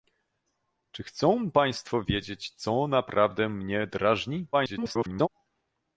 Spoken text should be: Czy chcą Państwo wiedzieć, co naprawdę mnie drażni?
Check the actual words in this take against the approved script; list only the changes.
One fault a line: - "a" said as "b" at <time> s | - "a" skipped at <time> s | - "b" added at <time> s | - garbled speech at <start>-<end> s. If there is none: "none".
- garbled speech at 4.5-5.3 s